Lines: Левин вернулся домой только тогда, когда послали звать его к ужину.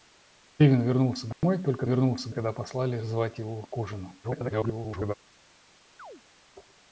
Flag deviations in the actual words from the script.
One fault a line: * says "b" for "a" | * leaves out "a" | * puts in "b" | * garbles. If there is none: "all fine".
* says "вернулся" for "тогда"
* garbles